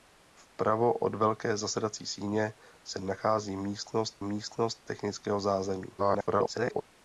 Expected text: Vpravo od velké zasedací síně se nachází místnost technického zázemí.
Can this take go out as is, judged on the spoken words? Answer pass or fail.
fail